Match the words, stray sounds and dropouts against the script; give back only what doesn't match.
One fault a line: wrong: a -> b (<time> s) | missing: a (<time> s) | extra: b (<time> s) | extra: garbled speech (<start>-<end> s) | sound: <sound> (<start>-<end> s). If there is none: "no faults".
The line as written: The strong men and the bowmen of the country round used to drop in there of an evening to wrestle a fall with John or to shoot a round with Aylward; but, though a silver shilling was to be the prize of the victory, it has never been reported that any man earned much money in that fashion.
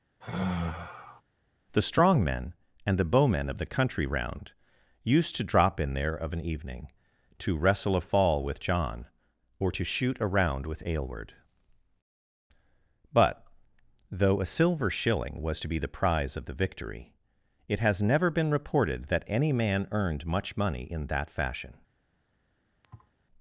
sound: sigh (0.2-1.2 s)
sound: thud (22.8-23.1 s)